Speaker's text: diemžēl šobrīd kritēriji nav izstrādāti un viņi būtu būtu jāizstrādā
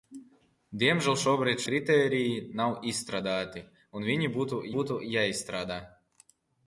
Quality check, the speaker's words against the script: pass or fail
pass